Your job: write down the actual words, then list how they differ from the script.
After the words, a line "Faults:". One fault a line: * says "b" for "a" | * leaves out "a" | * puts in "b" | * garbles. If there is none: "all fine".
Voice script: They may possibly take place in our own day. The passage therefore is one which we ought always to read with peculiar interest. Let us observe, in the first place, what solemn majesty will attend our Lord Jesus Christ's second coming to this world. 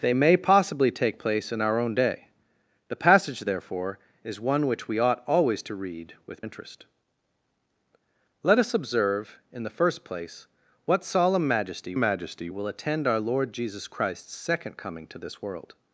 They may possibly take place in our own day. The passage therefore is one which we ought always to read with interest. Let us observe, in the first place, what solemn majesty majesty will attend our Lord Jesus Christ's second coming to this world.
Faults:
* leaves out "peculiar"
* puts in "majesty"